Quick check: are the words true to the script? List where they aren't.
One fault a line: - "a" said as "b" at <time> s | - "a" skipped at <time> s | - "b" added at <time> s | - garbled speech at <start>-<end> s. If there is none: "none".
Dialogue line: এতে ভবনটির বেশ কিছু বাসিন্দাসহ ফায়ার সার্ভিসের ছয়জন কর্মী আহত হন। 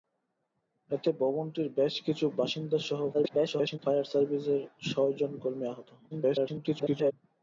- garbled speech at 3.1-3.8 s
- garbled speech at 6.1-7.1 s